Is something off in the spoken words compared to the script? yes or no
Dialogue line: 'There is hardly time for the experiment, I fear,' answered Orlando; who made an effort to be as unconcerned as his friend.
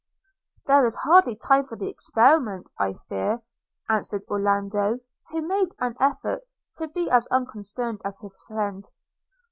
no